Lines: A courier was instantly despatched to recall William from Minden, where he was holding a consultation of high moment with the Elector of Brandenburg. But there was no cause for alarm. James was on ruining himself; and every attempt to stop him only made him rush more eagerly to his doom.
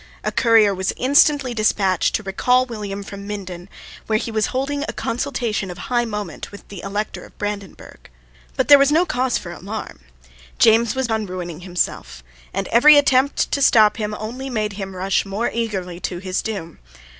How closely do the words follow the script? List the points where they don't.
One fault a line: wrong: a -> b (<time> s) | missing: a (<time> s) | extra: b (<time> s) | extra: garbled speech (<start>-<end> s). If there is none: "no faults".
no faults